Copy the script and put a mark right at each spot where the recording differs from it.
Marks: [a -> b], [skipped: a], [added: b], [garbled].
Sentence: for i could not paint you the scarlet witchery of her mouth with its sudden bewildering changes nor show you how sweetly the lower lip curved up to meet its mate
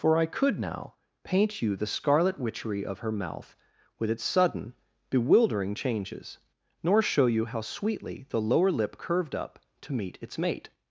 for i could [not -> now] paint you the scarlet witchery of her mouth with its sudden bewildering changes nor show you how sweetly the lower lip curved up to meet its mate